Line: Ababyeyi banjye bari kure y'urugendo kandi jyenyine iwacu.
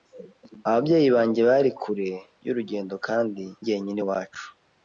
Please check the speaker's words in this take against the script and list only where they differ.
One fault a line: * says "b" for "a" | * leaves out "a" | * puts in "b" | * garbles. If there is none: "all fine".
all fine